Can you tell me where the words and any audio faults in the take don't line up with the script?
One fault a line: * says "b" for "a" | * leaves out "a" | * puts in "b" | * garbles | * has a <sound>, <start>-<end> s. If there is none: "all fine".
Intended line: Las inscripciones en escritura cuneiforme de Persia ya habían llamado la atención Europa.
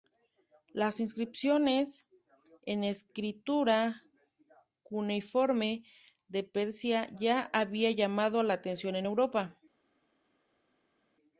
* puts in "en"